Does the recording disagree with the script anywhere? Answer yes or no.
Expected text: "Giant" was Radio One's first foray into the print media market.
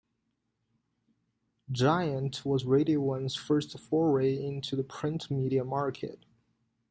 no